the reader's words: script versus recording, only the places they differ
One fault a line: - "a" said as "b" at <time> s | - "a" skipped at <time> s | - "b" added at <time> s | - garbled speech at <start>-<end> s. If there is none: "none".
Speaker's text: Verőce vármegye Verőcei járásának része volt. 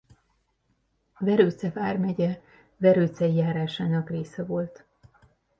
none